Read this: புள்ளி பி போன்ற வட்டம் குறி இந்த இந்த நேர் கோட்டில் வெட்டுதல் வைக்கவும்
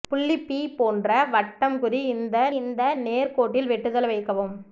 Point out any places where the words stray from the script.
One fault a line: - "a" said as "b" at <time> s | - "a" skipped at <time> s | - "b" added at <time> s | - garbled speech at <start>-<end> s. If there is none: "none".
none